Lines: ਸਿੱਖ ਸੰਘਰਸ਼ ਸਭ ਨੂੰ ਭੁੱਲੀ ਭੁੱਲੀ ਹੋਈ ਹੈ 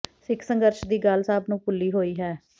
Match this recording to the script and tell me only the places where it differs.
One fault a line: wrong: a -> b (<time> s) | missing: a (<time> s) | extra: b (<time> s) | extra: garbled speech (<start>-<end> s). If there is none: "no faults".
extra: ਦੀ ਗੱਲ (0.8 s)
missing: ਭੁੱਲੀ (1.9 s)